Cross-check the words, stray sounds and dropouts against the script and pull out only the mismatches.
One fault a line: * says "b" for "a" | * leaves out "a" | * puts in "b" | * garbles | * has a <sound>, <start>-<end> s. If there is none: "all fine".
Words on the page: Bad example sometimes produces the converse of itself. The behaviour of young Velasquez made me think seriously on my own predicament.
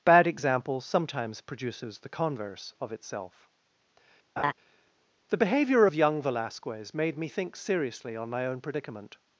* has a laugh, 4.4-4.5 s